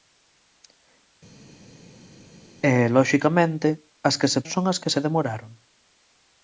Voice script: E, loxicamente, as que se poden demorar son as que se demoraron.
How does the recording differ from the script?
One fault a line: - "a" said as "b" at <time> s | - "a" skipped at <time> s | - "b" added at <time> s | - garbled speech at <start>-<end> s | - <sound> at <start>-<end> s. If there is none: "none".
- "poden demorar" skipped at 4.4 s